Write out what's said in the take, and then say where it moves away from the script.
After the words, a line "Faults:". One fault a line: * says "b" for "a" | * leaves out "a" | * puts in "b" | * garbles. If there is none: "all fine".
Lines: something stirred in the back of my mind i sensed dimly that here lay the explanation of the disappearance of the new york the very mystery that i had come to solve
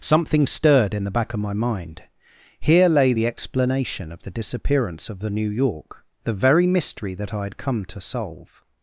something stirred in the back of my mind here lay the explanation of the disappearance of the new york the very mystery that i had come to solve
Faults:
* leaves out "i sensed dimly that"